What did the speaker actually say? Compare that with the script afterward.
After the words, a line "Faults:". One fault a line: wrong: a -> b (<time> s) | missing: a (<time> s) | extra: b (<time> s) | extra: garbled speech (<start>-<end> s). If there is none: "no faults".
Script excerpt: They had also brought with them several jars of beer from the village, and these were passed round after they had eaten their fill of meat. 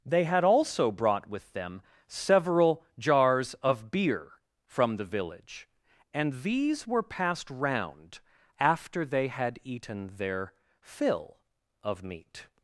They had also brought with them several jars of beer from the village, and these were passed round after they had eaten their fill of meat.
Faults:
no faults